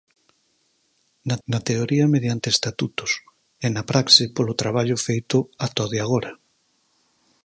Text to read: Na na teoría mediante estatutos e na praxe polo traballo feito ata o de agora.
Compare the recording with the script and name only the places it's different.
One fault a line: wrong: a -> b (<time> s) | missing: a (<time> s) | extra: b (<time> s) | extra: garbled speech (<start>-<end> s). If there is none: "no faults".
no faults